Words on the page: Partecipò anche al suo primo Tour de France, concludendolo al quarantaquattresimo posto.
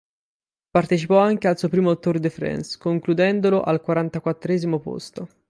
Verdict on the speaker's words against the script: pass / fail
pass